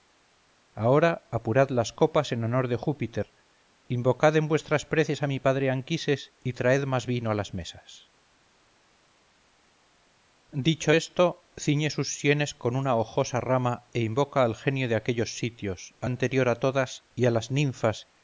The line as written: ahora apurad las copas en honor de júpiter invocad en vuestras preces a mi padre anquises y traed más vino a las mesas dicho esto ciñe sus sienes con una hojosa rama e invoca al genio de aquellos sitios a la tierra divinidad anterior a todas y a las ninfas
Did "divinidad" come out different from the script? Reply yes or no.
yes